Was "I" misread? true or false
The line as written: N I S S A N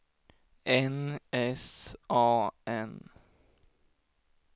true